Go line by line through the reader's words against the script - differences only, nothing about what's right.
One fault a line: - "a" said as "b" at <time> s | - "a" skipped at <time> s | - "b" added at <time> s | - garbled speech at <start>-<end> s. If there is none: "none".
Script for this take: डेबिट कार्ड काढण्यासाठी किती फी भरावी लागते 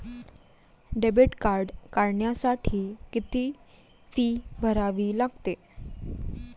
none